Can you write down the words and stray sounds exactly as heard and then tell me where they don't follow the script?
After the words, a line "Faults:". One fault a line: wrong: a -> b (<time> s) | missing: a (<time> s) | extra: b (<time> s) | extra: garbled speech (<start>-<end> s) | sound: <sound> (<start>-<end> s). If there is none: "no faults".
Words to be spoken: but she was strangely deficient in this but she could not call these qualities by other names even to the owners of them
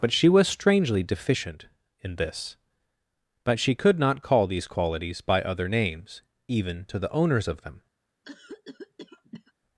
but she was strangely deficient in this but she could not call these qualities by other names even to the owners of them
Faults:
sound: cough (8.2-9.5 s)